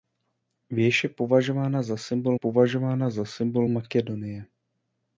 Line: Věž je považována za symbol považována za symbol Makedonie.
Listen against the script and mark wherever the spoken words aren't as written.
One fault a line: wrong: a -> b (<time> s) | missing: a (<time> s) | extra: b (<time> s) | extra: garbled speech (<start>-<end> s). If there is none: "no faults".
no faults